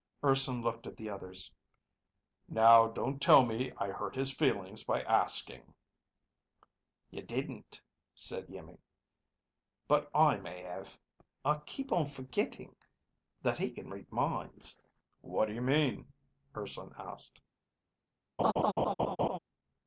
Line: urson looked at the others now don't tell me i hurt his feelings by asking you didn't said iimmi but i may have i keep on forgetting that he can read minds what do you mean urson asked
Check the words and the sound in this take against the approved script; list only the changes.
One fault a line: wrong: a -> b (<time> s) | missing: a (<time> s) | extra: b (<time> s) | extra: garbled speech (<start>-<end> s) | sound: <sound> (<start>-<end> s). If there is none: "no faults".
sound: laugh (18.4-19.4 s)